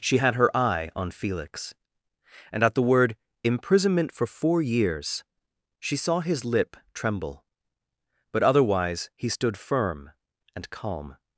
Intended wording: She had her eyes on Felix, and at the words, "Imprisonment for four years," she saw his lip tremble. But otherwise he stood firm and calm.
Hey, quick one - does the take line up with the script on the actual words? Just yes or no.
no